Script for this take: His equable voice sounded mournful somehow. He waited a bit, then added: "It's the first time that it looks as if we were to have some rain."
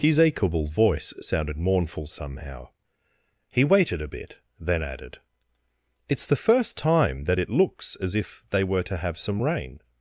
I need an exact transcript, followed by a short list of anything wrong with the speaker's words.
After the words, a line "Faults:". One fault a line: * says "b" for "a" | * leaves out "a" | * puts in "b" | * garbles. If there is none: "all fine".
His equable voice sounded mournful somehow. He waited a bit, then added: "It's the first time that it looks as if they were to have some rain."
Faults:
* says "they" for "we"